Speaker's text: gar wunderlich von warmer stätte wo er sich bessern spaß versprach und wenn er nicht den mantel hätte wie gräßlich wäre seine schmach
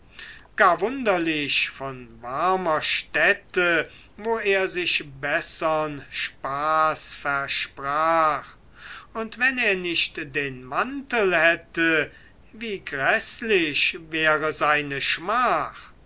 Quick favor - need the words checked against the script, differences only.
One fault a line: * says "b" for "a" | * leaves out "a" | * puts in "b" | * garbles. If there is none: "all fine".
all fine